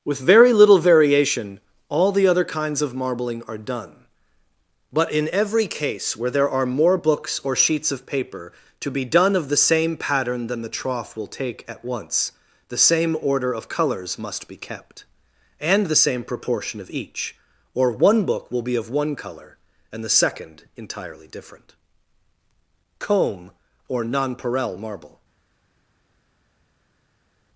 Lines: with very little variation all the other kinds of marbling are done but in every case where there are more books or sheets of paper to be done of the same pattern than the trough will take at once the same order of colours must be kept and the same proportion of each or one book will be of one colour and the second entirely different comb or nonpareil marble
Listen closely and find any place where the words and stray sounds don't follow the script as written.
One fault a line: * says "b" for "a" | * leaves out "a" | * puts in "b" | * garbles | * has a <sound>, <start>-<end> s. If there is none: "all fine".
all fine